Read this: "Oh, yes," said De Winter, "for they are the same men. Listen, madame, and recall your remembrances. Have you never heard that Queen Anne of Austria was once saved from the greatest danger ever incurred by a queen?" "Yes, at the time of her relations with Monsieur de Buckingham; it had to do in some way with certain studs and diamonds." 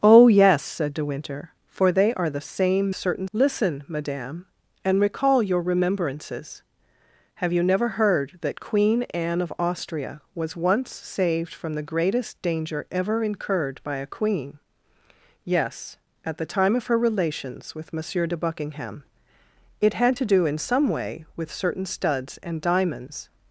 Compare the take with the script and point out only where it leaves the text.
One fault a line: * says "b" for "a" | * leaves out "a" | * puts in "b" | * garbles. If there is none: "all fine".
* says "certain" for "men"